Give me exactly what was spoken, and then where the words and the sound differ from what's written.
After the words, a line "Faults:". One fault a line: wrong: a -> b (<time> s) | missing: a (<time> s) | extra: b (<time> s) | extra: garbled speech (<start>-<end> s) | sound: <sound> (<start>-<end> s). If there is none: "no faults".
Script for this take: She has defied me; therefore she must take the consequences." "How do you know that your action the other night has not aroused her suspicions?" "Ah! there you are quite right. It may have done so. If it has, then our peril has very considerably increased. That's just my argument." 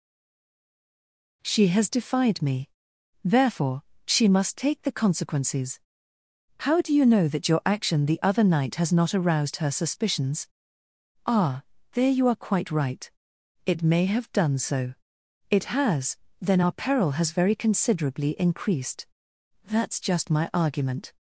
She has defied me; therefore she must take the consequences." "How do you know that your action the other night has not aroused her suspicions?" "Ah! there you are quite right. It may have done so. it has, then our peril has very considerably increased. That's just my argument."
Faults:
missing: If (14.9 s)